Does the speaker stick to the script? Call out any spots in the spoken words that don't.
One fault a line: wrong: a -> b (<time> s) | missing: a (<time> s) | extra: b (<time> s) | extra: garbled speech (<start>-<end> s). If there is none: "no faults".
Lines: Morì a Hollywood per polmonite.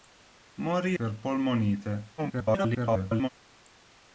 missing: a Hollywood (1.0 s)
extra: garbled speech (2.2-3.3 s)